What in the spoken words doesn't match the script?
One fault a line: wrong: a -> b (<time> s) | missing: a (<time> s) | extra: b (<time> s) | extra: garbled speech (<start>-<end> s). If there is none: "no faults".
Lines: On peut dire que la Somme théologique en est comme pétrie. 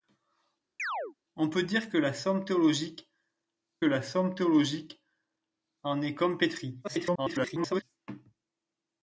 extra: la Somme théologique (3.8 s)
extra: garbled speech (6.8-7.8 s)